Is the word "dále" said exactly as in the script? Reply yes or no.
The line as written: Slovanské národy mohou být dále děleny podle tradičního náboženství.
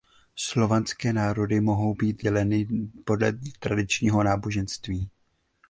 no